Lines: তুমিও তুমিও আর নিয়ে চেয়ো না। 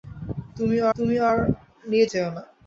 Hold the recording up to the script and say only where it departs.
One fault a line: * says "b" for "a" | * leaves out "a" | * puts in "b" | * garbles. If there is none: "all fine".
all fine